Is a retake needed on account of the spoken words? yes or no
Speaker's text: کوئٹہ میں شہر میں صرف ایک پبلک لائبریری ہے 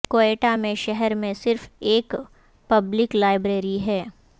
no